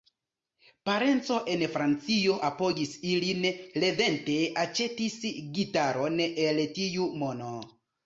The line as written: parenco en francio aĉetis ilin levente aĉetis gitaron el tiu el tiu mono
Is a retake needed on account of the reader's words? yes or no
yes